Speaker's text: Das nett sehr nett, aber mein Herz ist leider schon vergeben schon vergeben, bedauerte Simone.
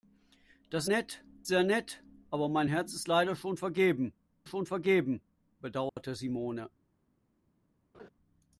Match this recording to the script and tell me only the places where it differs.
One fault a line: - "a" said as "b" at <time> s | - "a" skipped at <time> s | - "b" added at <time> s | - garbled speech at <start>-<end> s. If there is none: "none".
none